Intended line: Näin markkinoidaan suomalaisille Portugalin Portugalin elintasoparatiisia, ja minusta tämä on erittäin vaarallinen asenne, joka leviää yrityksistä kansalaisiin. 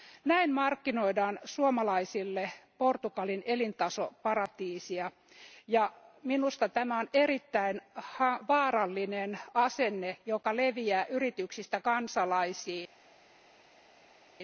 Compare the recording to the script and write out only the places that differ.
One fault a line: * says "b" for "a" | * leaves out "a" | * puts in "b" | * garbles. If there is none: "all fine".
* leaves out "Portugalin"